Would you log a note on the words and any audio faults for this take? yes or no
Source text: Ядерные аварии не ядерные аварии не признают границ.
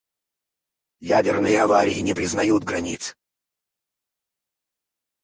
yes